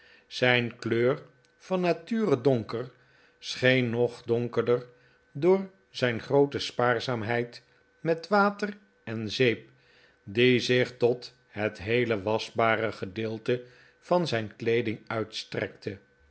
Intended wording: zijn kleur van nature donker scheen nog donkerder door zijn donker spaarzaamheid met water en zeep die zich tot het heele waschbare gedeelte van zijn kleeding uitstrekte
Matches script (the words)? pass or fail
fail